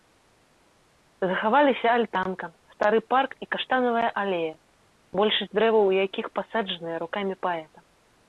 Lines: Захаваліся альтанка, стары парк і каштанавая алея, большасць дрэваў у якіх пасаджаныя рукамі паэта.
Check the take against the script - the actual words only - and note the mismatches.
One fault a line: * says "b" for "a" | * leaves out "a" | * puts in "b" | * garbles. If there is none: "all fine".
all fine